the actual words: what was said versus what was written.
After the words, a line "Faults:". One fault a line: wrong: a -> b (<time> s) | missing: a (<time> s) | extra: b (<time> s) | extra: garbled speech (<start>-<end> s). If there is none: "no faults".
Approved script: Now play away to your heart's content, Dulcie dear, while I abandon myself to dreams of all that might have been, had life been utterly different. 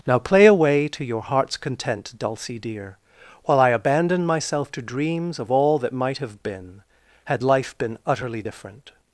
Now play away to your heart's content, Dulcie dear, while I abandon myself to dreams of all that might have been, had life been utterly different.
Faults:
no faults